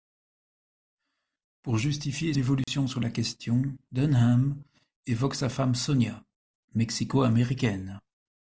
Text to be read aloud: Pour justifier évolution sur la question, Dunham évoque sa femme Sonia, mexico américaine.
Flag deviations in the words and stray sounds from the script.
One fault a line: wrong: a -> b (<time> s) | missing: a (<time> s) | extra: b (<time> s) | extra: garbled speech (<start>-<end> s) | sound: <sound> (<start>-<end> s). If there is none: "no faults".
sound: dropout (2.6-2.7 s)